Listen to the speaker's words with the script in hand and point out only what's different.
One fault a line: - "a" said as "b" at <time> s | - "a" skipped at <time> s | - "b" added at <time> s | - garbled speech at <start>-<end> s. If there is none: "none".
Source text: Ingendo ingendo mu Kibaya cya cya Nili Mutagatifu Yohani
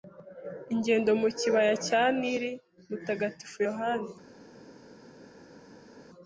- "ingendo" skipped at 1.1 s
- "cya" skipped at 2.0 s